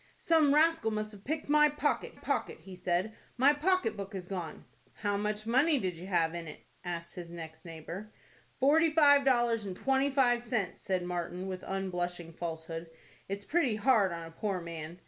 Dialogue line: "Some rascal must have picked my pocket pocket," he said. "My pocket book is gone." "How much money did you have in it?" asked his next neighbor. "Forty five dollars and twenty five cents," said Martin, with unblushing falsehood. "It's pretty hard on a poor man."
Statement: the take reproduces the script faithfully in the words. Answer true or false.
true